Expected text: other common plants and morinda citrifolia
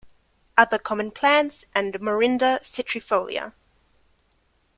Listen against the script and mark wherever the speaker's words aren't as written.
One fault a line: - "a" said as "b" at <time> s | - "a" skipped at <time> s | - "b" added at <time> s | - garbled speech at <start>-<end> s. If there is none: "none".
none